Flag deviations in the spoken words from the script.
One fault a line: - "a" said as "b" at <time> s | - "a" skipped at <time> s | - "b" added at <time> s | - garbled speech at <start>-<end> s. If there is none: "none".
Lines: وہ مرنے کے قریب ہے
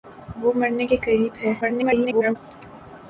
- garbled speech at 1.6-2.4 s